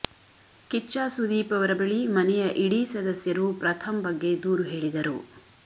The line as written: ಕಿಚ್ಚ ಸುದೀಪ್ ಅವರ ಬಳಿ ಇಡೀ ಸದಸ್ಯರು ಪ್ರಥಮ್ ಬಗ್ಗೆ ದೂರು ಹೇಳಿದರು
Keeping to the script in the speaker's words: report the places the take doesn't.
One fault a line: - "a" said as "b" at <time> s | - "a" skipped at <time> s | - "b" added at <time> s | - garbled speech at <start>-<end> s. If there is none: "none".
- "ಮನೆಯ" added at 2.1 s